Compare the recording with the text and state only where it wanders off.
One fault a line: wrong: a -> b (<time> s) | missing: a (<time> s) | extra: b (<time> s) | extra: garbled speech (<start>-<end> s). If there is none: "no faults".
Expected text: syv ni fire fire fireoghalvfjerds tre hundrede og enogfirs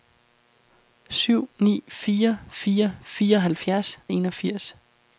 missing: tre hundrede (4.0 s)